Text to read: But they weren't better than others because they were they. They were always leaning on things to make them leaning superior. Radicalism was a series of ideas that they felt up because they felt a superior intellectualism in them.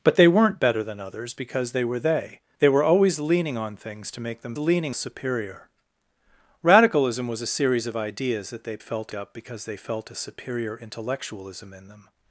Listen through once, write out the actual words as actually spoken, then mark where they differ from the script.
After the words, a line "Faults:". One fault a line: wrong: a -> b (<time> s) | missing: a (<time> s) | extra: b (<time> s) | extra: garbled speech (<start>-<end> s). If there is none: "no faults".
But they weren't better than others because they were they. They were always leaning on things to make them leaning superior. Radicalism was a series of ideas that they felt up because they felt a superior intellectualism in them.
Faults:
no faults